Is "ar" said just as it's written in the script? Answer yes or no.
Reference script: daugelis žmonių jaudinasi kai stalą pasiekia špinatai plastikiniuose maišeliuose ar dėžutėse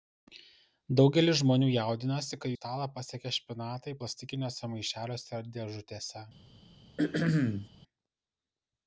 yes